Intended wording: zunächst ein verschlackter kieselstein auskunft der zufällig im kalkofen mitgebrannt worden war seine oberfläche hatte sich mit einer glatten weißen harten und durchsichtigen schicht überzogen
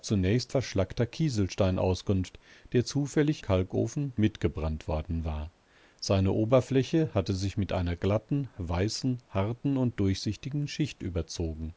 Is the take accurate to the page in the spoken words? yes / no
no